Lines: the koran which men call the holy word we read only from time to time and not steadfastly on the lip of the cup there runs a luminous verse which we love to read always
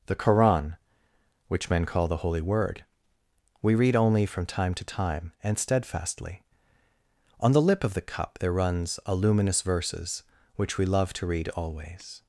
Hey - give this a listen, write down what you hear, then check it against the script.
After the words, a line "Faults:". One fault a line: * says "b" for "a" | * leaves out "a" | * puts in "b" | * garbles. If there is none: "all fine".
the koran which men call the holy word we read only from time to time and steadfastly on the lip of the cup there runs a luminous verses which we love to read always
Faults:
* leaves out "not"
* says "verses" for "verse"